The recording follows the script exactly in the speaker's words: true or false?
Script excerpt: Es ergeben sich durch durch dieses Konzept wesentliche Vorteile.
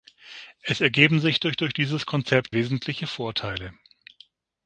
true